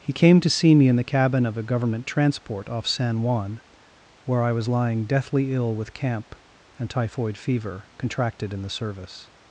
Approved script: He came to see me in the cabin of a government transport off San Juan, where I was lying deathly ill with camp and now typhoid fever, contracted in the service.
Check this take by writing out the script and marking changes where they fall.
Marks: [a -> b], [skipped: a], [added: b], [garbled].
He came to see me in the cabin of a government transport off San Juan, where I was lying deathly ill with camp and [skipped: now] typhoid fever, contracted in the service.